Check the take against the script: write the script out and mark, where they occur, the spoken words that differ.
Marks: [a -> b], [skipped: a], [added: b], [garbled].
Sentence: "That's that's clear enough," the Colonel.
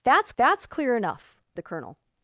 "That's that's clear enough," the Colonel.